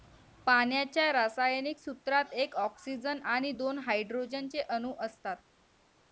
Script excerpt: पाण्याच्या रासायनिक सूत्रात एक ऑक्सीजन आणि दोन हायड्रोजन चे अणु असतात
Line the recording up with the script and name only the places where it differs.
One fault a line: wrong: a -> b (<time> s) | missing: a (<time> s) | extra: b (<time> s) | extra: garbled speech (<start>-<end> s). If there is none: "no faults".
no faults